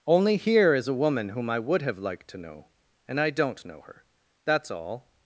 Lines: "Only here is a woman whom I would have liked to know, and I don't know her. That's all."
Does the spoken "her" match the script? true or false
true